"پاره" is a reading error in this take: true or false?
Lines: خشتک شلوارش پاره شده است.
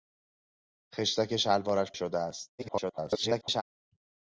true